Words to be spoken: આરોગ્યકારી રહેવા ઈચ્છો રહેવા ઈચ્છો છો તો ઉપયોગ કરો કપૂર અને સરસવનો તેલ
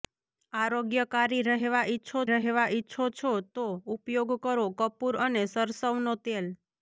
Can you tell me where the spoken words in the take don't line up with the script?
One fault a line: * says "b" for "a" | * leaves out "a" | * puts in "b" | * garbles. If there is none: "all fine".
all fine